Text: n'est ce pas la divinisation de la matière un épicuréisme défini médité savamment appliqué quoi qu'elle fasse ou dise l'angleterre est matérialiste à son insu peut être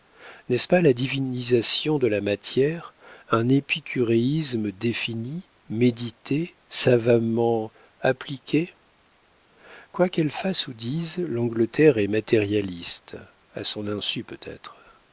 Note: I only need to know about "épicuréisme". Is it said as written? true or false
true